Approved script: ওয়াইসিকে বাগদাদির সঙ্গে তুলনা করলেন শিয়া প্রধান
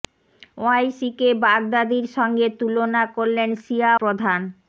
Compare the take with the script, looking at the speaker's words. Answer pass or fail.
pass